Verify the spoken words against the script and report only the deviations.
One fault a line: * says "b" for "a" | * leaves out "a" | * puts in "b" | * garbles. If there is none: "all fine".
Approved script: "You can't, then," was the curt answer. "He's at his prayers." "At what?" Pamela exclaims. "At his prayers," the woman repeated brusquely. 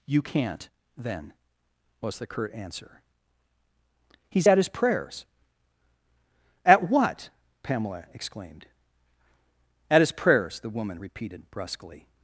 * says "exclaimed" for "exclaims"